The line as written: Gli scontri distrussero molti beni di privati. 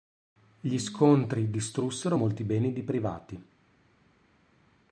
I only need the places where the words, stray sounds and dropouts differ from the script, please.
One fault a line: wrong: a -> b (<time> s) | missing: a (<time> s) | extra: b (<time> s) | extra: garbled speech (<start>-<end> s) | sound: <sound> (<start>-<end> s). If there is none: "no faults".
no faults